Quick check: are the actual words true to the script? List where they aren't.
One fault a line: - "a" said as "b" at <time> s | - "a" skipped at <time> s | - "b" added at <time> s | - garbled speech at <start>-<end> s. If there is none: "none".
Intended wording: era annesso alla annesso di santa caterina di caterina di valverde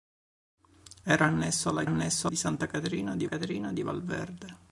none